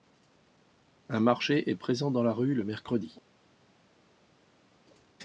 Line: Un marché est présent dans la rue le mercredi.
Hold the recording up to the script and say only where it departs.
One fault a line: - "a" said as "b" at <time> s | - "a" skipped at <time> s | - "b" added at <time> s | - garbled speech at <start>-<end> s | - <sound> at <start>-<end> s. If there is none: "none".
none